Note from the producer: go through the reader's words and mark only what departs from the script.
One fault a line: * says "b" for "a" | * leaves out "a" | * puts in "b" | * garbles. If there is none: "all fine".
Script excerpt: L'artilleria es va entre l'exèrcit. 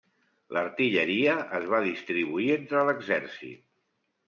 * puts in "distribuir"